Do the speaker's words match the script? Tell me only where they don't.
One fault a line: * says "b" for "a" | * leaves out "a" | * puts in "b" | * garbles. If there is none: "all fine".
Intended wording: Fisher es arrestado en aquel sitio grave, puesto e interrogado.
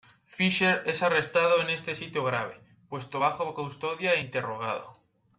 * says "este" for "aquel"
* puts in "bajo custodia"